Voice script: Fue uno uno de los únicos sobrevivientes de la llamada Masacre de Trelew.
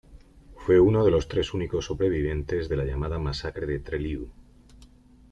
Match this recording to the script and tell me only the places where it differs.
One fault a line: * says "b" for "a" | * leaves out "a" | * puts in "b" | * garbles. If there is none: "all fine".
* leaves out "uno"
* puts in "tres"